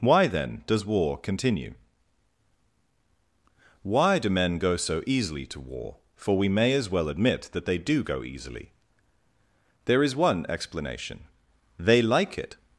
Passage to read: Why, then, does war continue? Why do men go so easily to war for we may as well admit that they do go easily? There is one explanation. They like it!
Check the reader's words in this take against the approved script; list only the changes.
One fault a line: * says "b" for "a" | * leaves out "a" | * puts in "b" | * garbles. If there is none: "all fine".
all fine